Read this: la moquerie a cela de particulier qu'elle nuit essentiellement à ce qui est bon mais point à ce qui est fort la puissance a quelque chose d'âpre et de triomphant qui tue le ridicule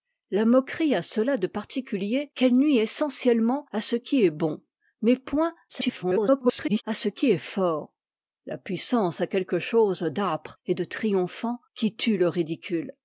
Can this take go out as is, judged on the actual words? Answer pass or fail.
fail